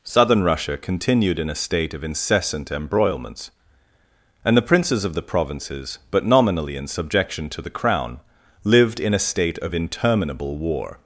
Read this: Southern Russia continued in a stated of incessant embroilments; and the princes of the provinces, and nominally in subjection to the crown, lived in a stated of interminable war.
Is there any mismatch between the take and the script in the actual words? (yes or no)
yes